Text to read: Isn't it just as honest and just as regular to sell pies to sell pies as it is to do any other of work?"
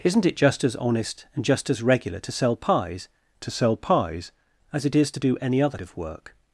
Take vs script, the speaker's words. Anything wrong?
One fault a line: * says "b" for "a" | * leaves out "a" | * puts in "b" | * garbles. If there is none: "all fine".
all fine